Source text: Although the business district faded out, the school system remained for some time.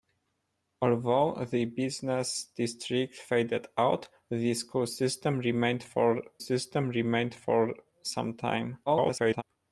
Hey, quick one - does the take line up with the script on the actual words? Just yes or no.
no